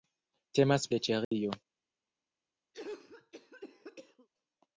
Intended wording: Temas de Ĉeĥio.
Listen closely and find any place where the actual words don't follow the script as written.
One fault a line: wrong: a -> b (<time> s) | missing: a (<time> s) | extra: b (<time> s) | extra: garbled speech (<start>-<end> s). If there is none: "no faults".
no faults